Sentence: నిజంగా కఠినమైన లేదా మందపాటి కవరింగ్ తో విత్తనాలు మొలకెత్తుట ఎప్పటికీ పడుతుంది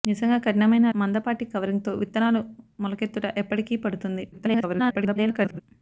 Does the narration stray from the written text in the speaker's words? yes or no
yes